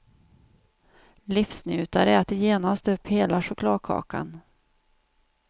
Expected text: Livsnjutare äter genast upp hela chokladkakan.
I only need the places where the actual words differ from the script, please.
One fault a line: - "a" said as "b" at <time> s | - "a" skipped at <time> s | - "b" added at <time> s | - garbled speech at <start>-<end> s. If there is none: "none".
none